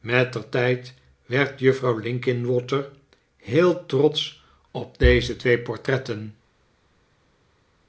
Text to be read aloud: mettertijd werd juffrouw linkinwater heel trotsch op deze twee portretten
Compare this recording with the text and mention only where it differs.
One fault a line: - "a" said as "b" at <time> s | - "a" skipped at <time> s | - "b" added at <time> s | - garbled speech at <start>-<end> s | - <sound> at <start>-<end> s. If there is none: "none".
none